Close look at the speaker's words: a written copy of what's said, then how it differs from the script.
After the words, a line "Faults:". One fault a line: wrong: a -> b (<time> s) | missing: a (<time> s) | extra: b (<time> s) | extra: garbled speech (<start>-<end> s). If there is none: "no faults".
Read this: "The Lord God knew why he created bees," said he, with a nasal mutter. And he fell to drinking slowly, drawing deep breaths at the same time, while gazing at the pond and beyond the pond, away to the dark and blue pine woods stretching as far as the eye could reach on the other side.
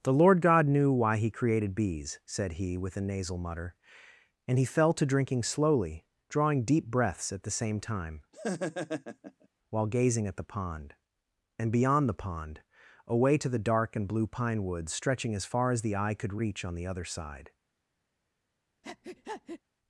"The Lord God knew why he created bees," said he, with a nasal mutter. And he fell to drinking slowly, drawing deep breaths at the same time, while gazing at the pond and beyond the pond, away to the dark and blue pine woods stretching as far as the eye could reach on the other side.
Faults:
no faults